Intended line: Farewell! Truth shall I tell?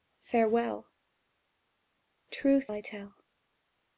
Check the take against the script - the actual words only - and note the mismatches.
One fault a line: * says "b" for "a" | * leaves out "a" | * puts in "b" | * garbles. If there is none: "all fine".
* leaves out "shall"